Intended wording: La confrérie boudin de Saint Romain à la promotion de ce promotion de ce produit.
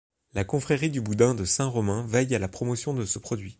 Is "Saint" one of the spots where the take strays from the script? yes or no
no